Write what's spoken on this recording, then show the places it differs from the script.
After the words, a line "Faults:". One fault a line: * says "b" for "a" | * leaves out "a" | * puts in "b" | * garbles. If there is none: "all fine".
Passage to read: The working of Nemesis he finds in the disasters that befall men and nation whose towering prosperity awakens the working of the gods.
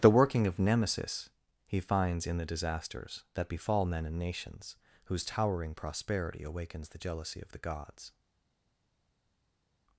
The working of Nemesis he finds in the disasters that befall men and nations whose towering prosperity awakens the jealousy of the gods.
Faults:
* says "nations" for "nation"
* says "jealousy" for "working"